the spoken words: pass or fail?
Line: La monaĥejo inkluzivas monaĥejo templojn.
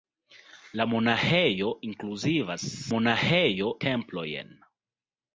pass